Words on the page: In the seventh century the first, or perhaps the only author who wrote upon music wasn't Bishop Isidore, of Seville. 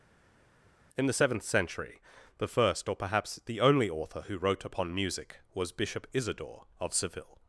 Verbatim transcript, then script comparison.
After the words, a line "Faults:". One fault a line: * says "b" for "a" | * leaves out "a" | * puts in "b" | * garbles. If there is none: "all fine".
In the seventh century the first, or perhaps the only author who wrote upon music was Bishop Isidore, of Seville.
Faults:
* says "was" for "wasn't"